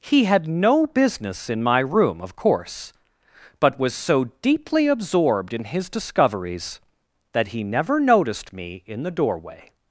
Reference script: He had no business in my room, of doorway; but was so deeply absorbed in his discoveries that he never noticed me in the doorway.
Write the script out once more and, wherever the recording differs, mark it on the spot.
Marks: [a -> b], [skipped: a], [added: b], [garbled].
He had no business in my room, of [doorway; -> course] but was so deeply absorbed in his discoveries that he never noticed me in the doorway.